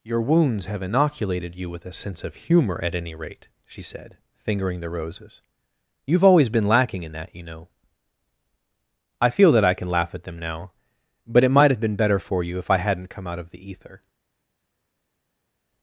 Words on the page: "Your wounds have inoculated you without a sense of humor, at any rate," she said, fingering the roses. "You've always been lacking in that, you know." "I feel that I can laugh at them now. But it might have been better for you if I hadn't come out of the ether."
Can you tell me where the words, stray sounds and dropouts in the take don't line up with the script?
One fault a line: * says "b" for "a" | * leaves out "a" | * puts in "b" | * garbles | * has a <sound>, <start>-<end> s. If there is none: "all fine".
* says "with" for "without"